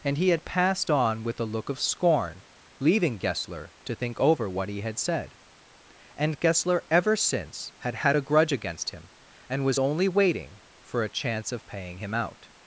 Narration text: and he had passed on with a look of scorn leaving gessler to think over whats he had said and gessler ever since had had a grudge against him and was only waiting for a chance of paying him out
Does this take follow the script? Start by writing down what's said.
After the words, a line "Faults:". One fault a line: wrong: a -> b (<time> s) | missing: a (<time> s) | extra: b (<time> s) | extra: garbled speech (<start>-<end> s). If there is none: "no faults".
and he had passed on with a look of scorn leaving gessler to think over what he had said and gessler ever since had had a grudge against him and was only waiting for a chance of paying him out
Faults:
wrong: whats -> what (4.5 s)